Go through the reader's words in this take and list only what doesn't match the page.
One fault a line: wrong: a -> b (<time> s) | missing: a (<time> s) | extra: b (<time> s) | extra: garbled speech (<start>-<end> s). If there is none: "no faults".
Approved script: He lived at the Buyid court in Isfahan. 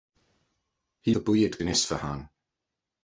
missing: lived at (1.1 s)
missing: court (1.6 s)